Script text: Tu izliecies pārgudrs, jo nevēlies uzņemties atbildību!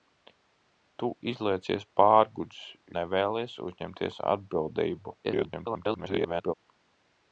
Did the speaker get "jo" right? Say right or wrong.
wrong